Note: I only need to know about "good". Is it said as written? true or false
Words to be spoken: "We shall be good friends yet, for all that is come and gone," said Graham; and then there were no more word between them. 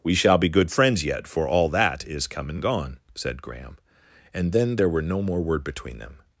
true